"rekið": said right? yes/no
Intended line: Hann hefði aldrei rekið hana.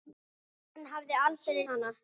no